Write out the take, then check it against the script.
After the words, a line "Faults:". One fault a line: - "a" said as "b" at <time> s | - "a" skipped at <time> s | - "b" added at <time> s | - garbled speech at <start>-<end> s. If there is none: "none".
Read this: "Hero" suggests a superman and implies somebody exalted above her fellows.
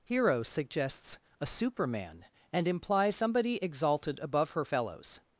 "Hero" suggests a superman and implies somebody exalted above her fellows.
Faults:
none